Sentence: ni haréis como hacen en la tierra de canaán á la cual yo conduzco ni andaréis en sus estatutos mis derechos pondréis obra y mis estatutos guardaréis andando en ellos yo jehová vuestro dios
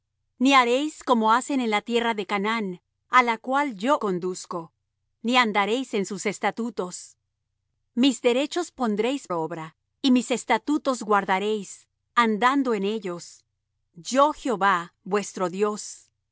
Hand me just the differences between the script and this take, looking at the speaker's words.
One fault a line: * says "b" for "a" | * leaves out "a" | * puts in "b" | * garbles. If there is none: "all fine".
all fine